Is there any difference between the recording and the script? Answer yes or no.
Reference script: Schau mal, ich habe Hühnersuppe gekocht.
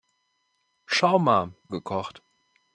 yes